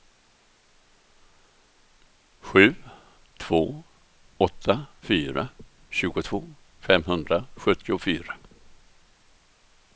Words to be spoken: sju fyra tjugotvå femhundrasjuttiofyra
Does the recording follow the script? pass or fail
fail